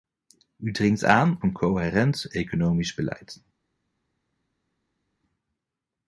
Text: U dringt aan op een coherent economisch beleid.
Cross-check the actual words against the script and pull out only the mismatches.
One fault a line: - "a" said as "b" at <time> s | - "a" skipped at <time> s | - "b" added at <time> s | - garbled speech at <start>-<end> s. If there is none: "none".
- "op" skipped at 1.4 s